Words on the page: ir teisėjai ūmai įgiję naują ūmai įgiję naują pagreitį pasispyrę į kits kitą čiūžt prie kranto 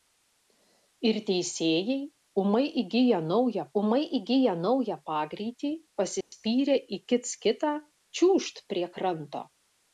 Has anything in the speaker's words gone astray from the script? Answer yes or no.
no